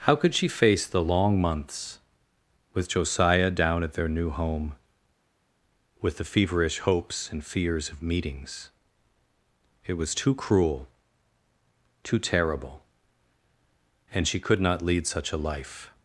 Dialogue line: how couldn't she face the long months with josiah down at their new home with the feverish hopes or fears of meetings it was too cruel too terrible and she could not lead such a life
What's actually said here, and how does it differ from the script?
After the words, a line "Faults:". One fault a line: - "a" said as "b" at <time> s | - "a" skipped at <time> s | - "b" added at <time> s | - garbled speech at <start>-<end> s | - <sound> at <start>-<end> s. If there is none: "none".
how could she face the long months with josiah down at their new home with the feverish hopes and fears of meetings it was too cruel too terrible and she could not lead such a life
Faults:
- "couldn't" said as "could" at 0.1 s
- "or" said as "and" at 7.3 s